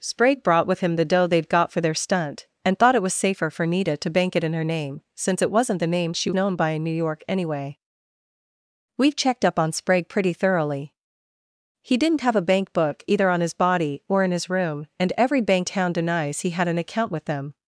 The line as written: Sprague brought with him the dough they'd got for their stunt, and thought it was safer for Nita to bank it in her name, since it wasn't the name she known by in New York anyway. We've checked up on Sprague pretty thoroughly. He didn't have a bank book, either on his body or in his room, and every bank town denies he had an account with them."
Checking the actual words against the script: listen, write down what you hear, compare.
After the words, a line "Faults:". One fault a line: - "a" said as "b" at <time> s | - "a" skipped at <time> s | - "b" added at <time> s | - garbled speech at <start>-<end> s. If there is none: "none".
Sprague brought with him the dough they'd got for their stunt, and thought it was safer for Nita to bank it in her name, since it wasn't the name she known by in New York anyway. We've checked up on Sprague pretty thoroughly. He didn't have a bank book, either on his body or in his room, and every bank town denies he had an account with them."
Faults:
none